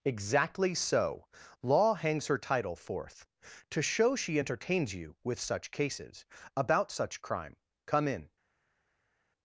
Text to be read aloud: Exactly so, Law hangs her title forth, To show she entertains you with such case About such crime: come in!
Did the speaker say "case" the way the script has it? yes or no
no